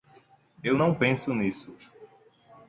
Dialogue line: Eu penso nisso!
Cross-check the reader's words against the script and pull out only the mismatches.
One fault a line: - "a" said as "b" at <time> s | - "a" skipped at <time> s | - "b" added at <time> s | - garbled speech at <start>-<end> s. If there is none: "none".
- "não" added at 0.8 s